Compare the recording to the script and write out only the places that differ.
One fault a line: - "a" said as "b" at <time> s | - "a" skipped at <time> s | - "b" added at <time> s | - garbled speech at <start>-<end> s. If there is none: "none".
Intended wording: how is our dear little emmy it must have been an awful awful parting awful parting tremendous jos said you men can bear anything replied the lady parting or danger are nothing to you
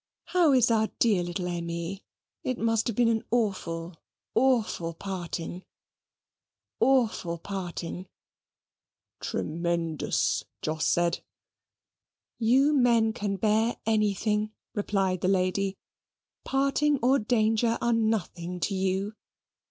none